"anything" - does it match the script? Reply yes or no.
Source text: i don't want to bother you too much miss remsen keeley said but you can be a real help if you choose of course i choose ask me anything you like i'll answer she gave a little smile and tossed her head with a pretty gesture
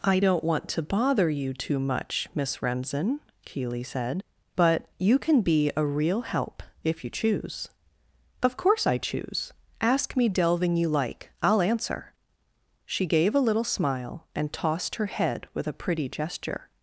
no